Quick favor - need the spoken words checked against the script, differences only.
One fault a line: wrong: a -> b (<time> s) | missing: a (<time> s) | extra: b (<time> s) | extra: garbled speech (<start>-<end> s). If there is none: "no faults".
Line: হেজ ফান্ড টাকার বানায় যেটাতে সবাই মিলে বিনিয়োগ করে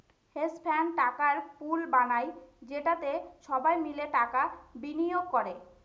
extra: পুল (1.6 s)
extra: টাকা (4.2 s)